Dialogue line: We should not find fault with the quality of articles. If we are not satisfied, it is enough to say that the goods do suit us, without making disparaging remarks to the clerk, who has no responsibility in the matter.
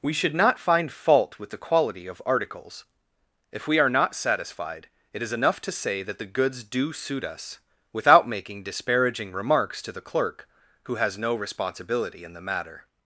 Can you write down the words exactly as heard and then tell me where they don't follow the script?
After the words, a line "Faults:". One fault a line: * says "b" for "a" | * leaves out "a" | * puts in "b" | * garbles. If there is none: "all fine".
We should not find fault with the quality of articles. If we are not satisfied, it is enough to say that the goods do suit us, without making disparaging remarks to the clerk, who has no responsibility in the matter.
Faults:
all fine